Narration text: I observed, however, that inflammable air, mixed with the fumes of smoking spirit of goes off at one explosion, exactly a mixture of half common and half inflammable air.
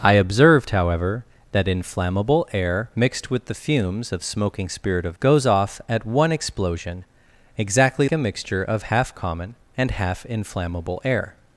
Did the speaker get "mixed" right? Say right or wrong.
right